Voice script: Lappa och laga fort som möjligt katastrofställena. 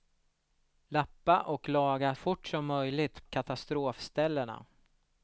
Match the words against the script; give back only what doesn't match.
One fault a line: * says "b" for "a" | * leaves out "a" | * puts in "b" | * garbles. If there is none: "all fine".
all fine